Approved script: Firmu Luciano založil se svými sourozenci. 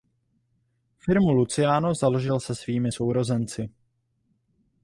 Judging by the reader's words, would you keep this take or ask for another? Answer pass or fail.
pass